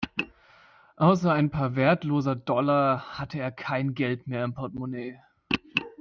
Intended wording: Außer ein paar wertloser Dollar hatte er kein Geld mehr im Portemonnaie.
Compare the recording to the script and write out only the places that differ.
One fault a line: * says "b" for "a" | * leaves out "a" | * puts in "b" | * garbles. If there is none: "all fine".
all fine